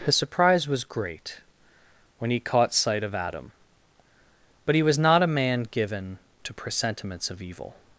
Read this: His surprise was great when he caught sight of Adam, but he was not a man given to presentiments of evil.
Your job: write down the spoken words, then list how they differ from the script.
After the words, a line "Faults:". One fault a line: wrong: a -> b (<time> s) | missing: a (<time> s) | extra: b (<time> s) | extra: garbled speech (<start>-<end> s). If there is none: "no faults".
His surprise was great when he caught sight of Adam, but he was not a man given to presentiments of evil.
Faults:
no faults